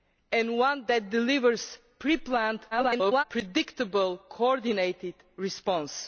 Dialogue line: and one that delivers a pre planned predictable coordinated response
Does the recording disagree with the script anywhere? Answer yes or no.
yes